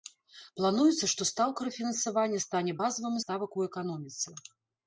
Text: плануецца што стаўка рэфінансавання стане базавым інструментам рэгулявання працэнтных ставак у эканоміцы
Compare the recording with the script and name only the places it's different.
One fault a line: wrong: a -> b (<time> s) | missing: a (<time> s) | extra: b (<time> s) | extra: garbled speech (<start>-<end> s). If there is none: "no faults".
missing: інструментам рэгулявання працэнтных (3.2 s)